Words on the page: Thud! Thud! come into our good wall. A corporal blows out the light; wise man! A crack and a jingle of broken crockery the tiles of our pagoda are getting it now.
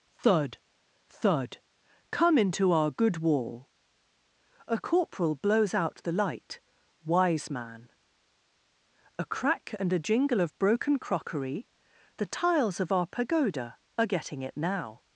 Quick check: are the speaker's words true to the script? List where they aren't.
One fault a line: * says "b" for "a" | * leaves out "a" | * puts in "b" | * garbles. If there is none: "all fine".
all fine